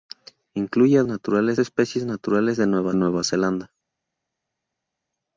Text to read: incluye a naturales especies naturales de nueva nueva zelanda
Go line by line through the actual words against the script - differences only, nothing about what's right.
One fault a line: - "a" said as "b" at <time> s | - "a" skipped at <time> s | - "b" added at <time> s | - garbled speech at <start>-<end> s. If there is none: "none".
none